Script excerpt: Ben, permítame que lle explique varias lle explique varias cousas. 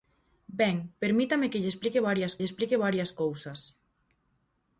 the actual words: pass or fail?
pass